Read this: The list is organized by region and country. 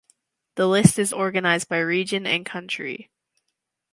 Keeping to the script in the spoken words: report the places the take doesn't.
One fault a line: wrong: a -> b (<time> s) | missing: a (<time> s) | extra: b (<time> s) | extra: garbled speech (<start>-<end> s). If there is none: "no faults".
no faults